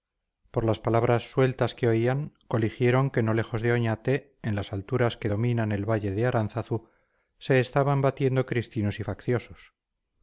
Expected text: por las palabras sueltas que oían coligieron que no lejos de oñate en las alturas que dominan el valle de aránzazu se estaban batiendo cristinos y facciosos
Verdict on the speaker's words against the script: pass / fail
pass